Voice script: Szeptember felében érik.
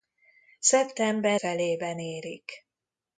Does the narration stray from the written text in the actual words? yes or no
no